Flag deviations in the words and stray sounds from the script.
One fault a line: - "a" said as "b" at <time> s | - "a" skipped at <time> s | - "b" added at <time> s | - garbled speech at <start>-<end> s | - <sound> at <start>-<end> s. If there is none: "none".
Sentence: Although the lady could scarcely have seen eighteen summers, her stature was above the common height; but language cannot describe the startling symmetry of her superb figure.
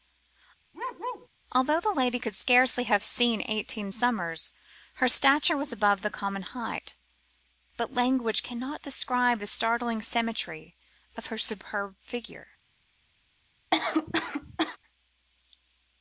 - bark at 0.7-1.3 s
- cough at 13.7-14.8 s